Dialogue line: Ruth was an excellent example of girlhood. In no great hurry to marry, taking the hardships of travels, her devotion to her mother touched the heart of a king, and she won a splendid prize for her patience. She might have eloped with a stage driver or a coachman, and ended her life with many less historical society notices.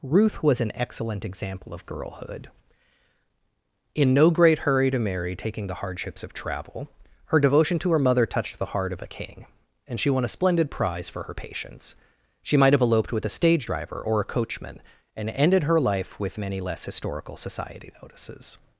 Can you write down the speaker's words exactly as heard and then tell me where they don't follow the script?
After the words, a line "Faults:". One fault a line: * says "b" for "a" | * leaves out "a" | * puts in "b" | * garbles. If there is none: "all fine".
Ruth was an excellent example of girlhood. In no great hurry to marry, taking the hardships of travel, her devotion to her mother touched the heart of a king, and she won a splendid prize for her patience. She might have eloped with a stage driver or a coachman, and ended her life with many less historical society notices.
Faults:
* says "travel" for "travels"